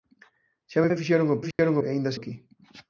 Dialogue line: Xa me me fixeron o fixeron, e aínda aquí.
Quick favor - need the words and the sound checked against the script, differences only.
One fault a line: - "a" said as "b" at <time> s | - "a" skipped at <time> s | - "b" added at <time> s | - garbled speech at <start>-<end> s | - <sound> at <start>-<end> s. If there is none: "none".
- dropout at 1.5-1.6 s